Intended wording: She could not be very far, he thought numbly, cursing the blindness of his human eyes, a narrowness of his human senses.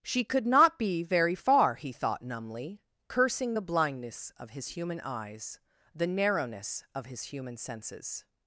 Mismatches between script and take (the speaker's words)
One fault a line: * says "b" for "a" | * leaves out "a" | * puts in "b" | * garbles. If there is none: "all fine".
* says "the" for "a"